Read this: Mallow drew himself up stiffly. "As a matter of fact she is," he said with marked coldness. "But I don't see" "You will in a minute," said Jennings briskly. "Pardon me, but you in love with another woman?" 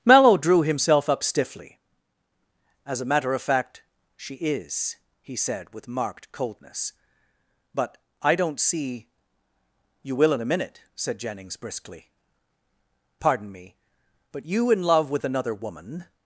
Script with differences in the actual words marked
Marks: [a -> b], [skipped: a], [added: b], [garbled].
Mallow drew himself up stiffly. "As a matter of fact she is," he said with marked coldness. "But I don't see" "You will in a minute," said Jennings briskly. "Pardon me, but you in love with another woman?"